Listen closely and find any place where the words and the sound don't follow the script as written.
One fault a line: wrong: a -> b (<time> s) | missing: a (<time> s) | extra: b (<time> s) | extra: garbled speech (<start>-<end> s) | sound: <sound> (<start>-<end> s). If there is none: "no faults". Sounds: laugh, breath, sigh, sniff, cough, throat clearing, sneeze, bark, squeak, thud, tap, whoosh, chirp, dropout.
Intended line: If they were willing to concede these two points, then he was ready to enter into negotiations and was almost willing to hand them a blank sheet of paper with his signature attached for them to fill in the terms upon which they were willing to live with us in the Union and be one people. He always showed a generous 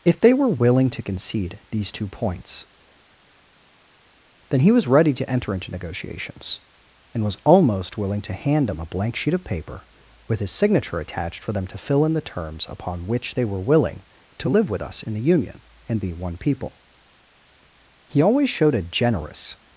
no faults